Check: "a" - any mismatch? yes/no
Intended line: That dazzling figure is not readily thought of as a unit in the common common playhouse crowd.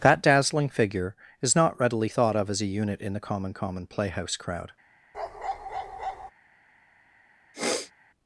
no